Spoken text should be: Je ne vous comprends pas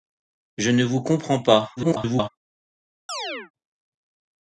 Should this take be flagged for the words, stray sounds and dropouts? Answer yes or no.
yes